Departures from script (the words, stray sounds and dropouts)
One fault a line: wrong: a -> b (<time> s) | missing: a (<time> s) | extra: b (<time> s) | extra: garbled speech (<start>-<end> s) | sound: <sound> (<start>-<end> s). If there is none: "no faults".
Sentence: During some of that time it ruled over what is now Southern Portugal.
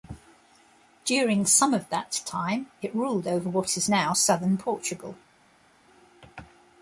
no faults